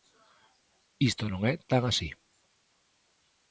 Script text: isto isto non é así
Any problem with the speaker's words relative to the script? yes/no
yes